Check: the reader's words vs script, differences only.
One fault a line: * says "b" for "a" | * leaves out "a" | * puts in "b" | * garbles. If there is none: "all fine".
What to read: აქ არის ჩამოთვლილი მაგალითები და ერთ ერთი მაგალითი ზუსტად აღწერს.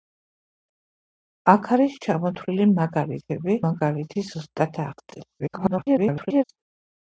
* leaves out "და ერთ ერთი"
* garbles